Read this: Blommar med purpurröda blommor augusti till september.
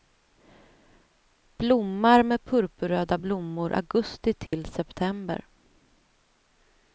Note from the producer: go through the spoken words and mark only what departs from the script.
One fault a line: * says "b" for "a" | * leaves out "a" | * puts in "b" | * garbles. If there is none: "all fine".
all fine